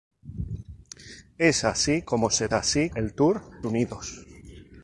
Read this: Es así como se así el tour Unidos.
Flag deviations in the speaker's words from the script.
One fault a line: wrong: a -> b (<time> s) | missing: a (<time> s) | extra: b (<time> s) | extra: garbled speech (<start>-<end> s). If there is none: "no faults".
no faults